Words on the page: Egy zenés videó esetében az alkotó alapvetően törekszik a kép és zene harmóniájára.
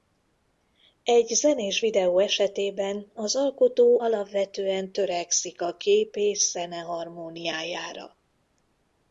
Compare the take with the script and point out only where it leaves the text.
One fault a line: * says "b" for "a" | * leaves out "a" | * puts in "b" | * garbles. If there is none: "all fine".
all fine